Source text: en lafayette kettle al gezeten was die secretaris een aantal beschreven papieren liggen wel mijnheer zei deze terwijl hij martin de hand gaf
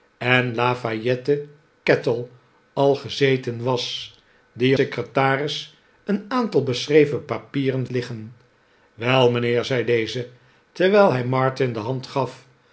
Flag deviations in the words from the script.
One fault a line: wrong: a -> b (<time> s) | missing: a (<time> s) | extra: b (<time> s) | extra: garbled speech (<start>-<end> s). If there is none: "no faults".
no faults